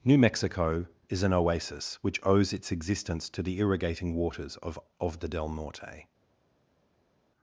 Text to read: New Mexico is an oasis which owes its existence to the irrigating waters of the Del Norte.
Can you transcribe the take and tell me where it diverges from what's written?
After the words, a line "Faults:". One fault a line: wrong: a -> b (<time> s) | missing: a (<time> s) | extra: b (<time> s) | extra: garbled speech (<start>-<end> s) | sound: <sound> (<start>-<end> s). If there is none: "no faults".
New Mexico is an oasis which owes its existence to the irrigating waters of of the Del Norte.
Faults:
extra: of (5.0 s)